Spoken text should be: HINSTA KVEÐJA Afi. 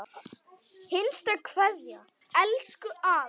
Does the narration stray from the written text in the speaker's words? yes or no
yes